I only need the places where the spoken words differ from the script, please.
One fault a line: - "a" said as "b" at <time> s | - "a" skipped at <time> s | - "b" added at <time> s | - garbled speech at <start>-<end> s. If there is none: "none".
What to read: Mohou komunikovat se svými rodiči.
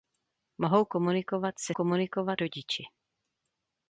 - "svými" said as "komunikovat" at 1.7 s